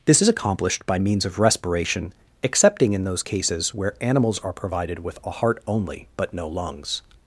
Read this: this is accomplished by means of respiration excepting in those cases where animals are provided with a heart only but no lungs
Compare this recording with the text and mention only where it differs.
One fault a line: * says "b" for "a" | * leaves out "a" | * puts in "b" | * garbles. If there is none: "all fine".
all fine